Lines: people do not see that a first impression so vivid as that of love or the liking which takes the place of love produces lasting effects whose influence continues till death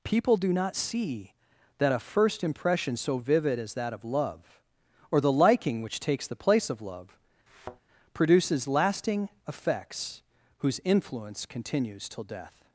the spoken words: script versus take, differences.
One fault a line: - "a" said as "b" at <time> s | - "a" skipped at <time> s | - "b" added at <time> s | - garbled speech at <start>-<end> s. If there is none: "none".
none